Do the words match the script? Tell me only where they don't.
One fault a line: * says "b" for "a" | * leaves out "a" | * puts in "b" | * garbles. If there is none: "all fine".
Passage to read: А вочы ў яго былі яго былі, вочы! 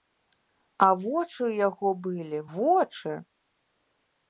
* leaves out "яго былі"